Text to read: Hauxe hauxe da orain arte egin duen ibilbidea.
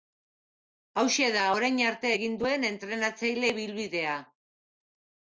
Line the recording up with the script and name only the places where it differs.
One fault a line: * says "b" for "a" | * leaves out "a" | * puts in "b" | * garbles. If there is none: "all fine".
* leaves out "hauxe"
* puts in "entrenatzaile"